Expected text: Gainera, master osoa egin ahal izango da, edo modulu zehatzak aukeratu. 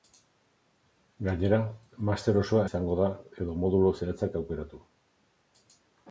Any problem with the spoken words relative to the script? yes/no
yes